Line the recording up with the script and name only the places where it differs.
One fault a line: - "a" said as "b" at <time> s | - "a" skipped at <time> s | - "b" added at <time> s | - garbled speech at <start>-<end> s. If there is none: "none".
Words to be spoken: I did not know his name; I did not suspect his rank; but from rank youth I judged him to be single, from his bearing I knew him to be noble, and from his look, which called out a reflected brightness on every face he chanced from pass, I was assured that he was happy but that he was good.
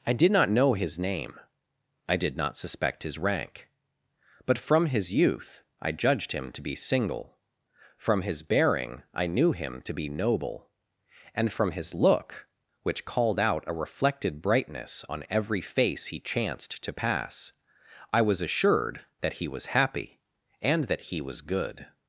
- "rank" said as "his" at 4.9 s
- "from" said as "to" at 16.8 s
- "but" said as "and" at 20.6 s